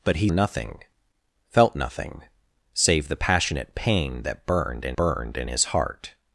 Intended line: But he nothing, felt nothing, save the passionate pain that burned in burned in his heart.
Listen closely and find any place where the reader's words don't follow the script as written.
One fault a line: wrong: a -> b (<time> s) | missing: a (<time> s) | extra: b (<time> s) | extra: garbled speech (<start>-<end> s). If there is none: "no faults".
no faults